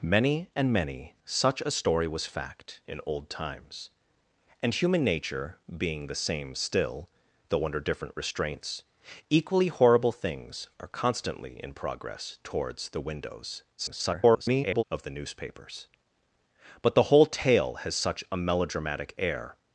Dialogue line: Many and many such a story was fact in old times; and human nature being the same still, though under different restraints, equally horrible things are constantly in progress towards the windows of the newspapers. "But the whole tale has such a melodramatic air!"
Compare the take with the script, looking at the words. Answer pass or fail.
fail